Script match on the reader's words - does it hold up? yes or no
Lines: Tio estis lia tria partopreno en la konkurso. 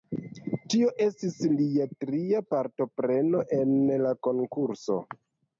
yes